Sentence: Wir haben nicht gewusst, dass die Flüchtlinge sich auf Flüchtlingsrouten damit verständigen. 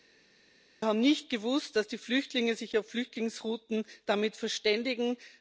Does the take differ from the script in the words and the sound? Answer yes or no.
no